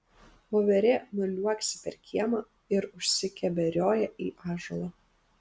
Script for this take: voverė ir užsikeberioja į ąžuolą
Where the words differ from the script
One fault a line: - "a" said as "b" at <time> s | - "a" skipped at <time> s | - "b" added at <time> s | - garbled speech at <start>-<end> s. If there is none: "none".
- "nuliuoksi per kiemą" added at 1.2 s